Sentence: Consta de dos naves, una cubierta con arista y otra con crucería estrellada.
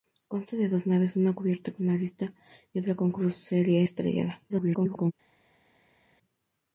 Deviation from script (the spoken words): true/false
true